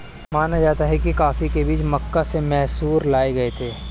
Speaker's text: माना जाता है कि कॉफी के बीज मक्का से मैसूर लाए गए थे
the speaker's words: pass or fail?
pass